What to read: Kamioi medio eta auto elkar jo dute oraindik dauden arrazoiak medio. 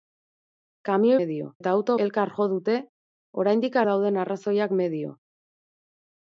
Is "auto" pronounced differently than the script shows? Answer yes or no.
no